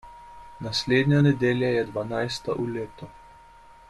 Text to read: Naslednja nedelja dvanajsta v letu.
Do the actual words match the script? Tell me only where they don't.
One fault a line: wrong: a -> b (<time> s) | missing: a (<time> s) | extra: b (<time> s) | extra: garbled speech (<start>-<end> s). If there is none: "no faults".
extra: je (1.7 s)